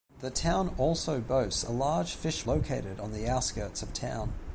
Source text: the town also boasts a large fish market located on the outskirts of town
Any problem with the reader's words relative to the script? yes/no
yes